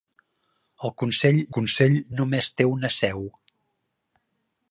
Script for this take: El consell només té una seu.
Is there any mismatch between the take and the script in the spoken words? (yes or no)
yes